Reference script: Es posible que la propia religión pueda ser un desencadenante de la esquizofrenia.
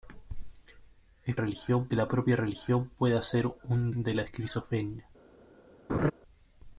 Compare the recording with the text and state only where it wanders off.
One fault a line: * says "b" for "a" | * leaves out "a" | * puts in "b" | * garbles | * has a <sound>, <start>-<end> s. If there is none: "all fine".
* says "religión" for "posible"
* leaves out "desencadenante"
* has a laugh, 5.9-6.1 s